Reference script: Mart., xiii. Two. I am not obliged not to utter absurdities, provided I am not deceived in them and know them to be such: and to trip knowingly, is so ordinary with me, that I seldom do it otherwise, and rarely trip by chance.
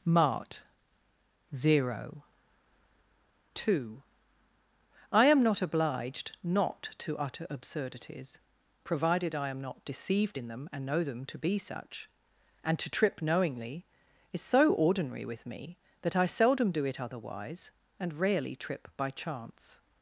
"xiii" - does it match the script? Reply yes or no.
no